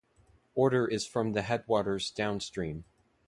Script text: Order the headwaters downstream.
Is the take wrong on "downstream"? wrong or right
right